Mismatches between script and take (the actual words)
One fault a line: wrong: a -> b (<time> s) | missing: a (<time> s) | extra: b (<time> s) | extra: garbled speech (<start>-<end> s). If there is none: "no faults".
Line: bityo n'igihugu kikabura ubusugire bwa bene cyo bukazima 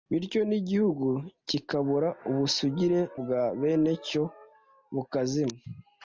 no faults